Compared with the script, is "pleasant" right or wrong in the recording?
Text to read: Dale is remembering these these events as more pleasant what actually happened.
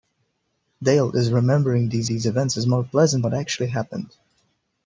right